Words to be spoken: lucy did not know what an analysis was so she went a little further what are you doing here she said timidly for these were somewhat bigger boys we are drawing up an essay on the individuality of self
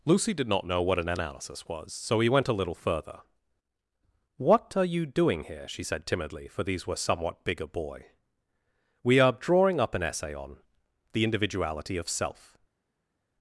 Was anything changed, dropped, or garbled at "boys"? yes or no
yes